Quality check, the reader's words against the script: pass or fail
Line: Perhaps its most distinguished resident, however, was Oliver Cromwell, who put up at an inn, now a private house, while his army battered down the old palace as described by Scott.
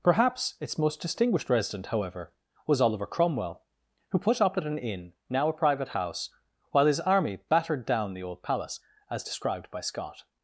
pass